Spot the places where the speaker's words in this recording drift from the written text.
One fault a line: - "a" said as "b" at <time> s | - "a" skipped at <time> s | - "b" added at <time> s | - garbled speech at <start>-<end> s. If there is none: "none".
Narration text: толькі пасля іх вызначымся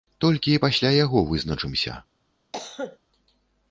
- "іх" said as "яго" at 1.0 s